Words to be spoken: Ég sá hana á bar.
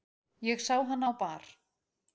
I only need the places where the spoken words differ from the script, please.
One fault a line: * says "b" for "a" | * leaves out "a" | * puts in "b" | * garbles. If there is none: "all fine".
all fine